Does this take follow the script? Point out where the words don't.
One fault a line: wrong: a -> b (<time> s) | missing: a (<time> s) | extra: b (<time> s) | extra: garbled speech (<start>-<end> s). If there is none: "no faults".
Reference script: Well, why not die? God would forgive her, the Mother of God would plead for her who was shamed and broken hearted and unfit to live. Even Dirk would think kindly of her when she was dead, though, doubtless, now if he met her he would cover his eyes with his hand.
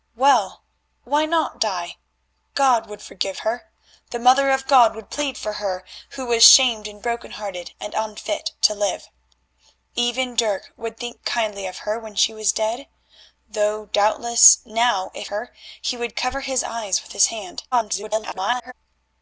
missing: he met (15.3 s)
extra: garbled speech (17.7-18.7 s)